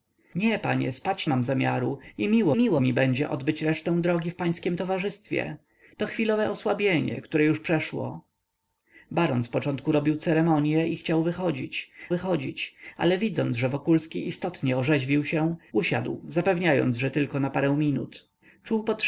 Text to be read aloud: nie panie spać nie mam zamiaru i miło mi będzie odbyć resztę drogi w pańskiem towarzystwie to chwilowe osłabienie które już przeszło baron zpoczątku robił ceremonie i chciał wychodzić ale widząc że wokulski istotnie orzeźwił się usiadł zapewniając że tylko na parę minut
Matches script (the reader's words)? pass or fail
fail